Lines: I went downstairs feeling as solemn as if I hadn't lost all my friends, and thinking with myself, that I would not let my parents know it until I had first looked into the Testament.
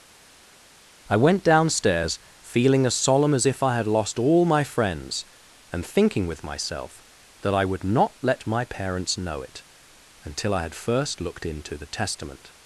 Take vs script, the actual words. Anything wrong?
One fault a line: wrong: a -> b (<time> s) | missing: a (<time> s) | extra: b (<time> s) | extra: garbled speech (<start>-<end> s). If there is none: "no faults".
wrong: hadn't -> had (3.8 s)